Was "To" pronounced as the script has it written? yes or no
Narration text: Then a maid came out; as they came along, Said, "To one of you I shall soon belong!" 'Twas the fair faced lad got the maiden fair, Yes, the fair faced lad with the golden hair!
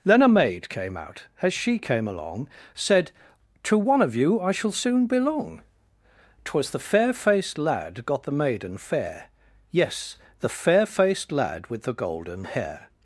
yes